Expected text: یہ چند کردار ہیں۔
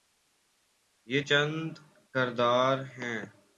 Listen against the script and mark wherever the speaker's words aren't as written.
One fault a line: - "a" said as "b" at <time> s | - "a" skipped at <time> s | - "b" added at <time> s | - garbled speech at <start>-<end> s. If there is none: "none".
none